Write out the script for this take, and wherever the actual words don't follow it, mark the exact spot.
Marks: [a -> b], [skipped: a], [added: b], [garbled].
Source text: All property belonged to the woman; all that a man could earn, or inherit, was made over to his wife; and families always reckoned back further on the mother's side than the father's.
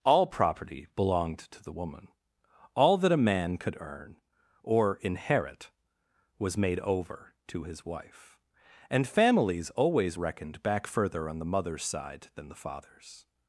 All property belonged to the woman; all that a man could earn, or inherit, was made over to his wife; and families always reckoned back further on the mother's side than the father's.